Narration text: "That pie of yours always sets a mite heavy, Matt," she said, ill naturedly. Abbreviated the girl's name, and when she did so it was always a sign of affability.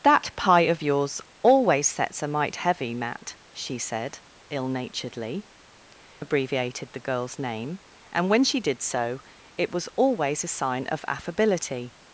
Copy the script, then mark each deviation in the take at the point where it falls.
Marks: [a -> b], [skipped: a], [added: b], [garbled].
"That pie of yours always sets a mite heavy, Matt," she said, ill naturedly. Abbreviated the girl's name, and when she did so it was always a sign of affability.